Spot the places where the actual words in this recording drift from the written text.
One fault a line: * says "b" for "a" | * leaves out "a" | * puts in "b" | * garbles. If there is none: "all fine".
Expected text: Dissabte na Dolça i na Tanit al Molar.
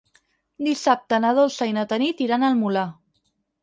* puts in "iran"